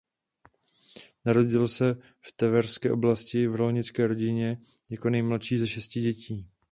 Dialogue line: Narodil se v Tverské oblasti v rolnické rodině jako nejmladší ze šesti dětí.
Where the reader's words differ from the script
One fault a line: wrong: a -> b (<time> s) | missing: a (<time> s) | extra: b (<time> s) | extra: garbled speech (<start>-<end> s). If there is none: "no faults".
no faults